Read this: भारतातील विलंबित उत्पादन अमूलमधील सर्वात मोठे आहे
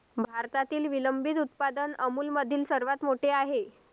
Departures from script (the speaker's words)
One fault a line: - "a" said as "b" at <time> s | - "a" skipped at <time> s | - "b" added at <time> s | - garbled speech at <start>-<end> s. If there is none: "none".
none